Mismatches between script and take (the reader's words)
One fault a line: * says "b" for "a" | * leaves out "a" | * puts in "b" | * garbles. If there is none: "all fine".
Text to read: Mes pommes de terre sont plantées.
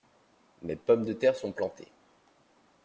all fine